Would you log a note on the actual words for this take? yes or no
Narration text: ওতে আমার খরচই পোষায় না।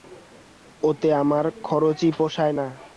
no